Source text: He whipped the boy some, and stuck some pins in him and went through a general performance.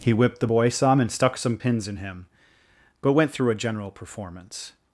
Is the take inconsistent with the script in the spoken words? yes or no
yes